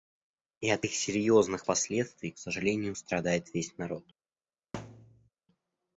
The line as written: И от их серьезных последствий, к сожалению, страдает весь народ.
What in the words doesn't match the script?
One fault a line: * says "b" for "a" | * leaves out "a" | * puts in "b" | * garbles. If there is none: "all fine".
all fine